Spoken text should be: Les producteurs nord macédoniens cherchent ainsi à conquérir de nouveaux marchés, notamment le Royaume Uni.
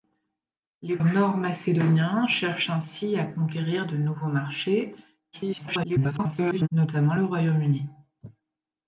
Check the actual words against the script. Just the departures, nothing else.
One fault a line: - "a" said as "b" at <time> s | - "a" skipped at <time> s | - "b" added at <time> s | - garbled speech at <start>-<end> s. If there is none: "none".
- "producteurs" skipped at 1.0 s
- garbled speech at 5.3-6.7 s